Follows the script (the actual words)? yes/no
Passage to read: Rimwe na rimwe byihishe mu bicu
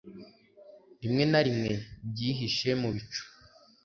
yes